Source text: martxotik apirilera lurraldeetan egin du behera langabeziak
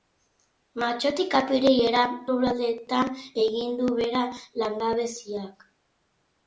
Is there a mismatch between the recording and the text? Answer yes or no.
no